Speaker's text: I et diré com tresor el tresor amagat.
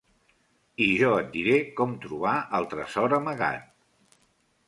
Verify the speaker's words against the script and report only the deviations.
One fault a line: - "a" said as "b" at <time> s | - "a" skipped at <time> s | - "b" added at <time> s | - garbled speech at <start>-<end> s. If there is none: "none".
- "jo" added at 1.0 s
- "tresor" said as "trobar" at 2.1 s